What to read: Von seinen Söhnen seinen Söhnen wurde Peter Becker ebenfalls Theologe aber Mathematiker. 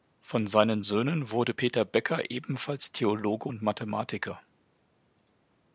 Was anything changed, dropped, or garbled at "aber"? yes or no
yes